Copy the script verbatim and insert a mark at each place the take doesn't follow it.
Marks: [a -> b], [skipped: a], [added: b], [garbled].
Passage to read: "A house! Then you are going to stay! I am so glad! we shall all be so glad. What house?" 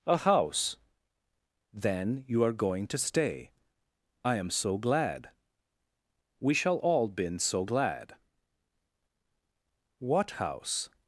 "A house! Then you are going to stay! I am so glad! we shall all [be -> been] so glad. What house?"